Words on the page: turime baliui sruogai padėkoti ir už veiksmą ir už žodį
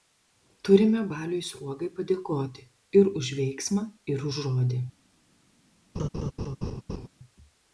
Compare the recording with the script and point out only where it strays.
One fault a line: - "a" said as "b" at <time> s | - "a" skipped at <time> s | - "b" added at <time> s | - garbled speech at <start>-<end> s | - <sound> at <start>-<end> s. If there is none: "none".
- laugh at 5.9-7.1 s